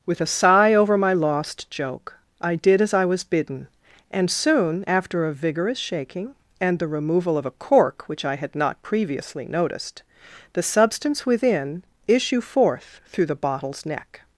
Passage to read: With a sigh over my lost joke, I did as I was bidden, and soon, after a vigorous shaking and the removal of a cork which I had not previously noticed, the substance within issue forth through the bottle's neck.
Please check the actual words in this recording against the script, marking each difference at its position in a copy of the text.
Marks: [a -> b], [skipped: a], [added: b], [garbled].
With a sigh over my lost joke, I did as I was bidden, and soon, after a vigorous shaking and the removal of a cork which I had not previously noticed, the substance within issue forth through the bottle's neck.